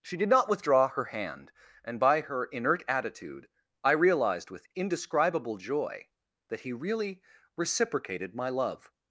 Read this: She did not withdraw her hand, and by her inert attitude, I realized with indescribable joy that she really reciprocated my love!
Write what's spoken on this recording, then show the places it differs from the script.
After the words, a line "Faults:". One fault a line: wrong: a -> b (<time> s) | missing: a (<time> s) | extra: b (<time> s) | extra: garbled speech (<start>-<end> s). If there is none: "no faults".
She did not withdraw her hand, and by her inert attitude, I realized with indescribable joy that he really reciprocated my love!
Faults:
wrong: she -> he (6.6 s)